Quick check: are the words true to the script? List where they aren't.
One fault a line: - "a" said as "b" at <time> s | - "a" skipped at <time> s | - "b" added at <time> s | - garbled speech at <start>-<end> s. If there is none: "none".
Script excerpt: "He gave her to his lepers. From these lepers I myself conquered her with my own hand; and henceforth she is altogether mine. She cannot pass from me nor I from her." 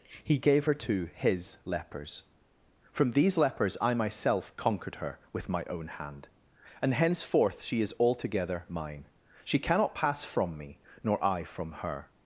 none